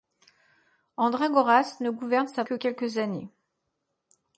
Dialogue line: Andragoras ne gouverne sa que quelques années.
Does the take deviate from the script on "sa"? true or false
false